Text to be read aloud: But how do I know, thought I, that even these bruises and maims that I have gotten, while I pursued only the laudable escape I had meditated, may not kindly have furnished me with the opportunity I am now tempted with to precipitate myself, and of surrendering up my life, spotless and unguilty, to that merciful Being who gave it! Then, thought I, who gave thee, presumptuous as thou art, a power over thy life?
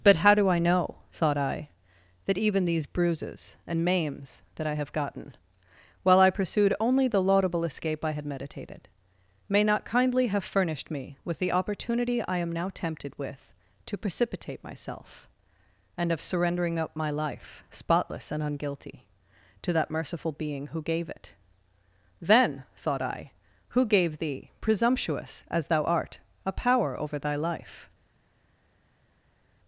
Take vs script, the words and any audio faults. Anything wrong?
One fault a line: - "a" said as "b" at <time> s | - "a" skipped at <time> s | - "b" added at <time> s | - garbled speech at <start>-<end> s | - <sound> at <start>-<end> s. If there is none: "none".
none